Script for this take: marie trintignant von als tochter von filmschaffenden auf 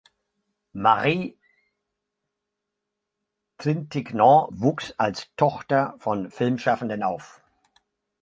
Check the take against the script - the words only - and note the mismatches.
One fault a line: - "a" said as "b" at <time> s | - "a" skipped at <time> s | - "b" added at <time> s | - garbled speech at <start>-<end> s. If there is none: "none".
- "von" said as "wuchs" at 4.5 s